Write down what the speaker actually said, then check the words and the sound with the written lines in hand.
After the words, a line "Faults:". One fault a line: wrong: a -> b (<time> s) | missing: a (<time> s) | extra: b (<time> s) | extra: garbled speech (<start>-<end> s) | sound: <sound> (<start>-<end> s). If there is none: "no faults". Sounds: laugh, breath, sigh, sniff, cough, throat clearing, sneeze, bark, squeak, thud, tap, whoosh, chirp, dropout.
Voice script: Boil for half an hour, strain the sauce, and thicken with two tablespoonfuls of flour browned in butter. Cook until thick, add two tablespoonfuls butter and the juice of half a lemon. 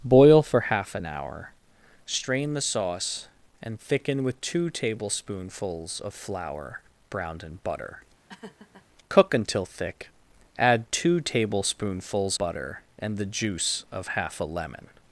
Boil for half an hour, strain the sauce, and thicken with two tablespoonfuls of flour browned in butter. Cook until thick, add two tablespoonfuls butter and the juice of half a lemon.
Faults:
sound: laugh (8.3-8.9 s)